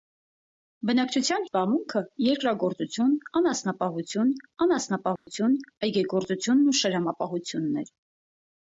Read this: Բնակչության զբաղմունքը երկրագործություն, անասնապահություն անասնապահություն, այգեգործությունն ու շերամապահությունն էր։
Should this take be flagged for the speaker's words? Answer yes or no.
no